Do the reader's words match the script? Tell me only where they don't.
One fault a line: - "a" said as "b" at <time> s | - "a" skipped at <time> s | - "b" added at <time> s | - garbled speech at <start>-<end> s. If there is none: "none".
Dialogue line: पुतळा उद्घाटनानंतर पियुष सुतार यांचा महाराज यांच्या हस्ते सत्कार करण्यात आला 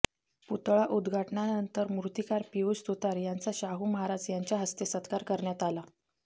- "मूर्तीकार" added at 1.9 s
- "शाहू" added at 3.5 s